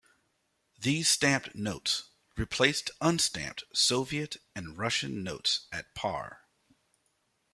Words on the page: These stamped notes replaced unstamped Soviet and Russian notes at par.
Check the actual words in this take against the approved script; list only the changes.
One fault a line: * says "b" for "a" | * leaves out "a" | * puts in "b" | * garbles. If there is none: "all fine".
all fine